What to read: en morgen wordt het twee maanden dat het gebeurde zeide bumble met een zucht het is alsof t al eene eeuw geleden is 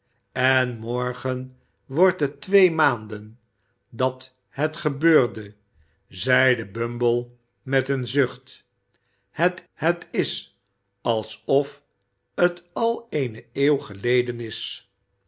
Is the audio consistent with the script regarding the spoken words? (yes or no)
no